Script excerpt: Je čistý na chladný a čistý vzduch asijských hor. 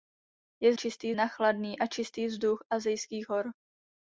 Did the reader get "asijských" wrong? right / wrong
right